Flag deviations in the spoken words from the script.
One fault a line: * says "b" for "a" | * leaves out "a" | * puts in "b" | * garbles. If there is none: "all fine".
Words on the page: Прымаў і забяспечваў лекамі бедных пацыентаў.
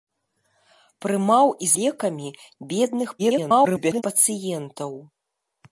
* leaves out "забяспечваў"
* garbles